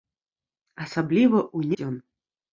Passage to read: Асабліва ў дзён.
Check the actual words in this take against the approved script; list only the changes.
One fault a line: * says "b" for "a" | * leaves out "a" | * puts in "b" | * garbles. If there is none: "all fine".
all fine